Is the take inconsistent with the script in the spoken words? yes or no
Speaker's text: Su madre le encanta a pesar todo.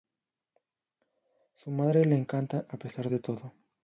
yes